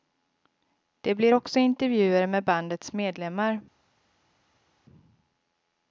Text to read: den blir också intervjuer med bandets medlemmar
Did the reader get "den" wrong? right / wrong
wrong